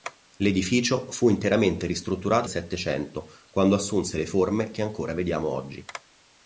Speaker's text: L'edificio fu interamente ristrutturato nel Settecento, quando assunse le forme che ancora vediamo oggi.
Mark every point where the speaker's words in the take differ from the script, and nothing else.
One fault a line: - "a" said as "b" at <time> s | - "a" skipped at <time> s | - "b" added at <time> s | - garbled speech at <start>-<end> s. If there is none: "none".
- "nel" skipped at 2.5 s